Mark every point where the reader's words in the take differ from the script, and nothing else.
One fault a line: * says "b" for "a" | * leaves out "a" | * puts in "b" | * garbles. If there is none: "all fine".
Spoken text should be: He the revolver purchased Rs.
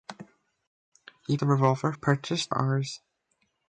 all fine